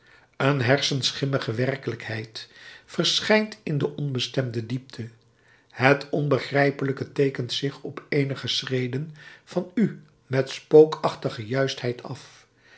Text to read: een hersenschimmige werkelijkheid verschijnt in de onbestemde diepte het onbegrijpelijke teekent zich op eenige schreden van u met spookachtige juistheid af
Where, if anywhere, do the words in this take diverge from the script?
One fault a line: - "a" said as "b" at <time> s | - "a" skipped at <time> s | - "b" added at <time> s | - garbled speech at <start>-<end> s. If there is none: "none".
none